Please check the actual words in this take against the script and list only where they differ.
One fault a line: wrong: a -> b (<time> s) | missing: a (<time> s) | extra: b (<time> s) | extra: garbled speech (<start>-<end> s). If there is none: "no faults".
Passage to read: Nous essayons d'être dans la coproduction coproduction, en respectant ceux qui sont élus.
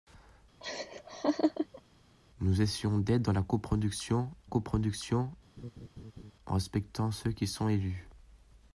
no faults